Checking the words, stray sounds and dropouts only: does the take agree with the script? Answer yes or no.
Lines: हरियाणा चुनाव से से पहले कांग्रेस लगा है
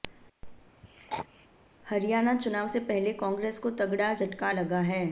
no